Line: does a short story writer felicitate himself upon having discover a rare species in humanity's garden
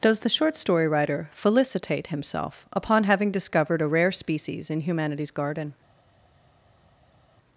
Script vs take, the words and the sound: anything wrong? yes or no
yes